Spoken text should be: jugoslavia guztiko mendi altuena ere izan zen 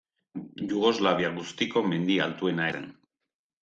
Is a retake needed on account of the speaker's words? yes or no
yes